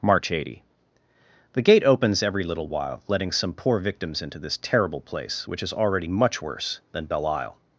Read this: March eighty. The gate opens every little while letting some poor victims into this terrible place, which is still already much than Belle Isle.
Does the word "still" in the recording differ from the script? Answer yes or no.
yes